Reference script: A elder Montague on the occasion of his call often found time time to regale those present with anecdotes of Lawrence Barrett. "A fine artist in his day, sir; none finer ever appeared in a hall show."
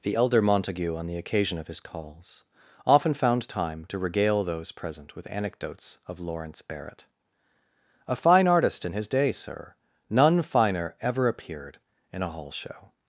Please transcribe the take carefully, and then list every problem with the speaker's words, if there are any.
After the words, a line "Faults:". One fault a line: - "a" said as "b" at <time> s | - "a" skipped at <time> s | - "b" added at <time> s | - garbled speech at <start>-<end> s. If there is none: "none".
The elder Montague on the occasion of his calls often found time to regale those present with anecdotes of Lawrence Barrett. "A fine artist in his day, sir; none finer ever appeared in a hall show."
Faults:
- "A" said as "The" at 0.0 s
- "call" said as "calls" at 1.8 s
- "time" skipped at 3.9 s